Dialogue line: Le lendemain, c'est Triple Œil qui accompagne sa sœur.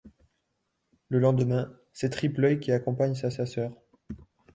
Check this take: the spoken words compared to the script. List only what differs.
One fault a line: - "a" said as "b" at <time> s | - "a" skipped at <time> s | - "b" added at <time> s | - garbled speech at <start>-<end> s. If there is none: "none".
- "sa" added at 3.3 s